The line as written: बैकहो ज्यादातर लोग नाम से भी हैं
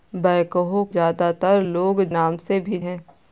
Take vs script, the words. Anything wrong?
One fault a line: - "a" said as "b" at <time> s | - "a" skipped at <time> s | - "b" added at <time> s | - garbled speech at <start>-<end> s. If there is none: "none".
none